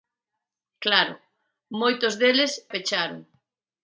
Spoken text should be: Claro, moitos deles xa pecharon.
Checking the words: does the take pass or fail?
fail